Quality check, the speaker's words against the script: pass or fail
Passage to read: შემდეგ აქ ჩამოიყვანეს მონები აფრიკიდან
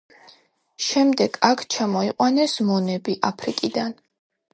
pass